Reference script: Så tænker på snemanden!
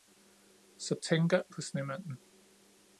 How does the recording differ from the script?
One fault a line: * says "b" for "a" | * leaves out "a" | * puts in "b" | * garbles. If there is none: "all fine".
all fine